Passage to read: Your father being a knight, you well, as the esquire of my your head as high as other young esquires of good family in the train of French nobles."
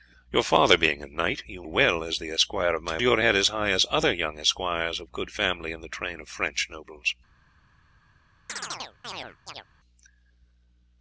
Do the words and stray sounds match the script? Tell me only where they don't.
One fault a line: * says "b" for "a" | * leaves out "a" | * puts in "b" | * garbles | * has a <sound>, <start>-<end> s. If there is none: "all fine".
* has a chirp, 8.5-9.7 s